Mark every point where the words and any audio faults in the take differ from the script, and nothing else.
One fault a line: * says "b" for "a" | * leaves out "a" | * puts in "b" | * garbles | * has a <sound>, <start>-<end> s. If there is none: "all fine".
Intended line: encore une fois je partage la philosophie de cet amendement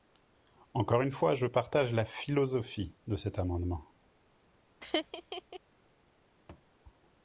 * has a laugh, 4.8-5.6 s
* has a thud, 6.5-6.7 s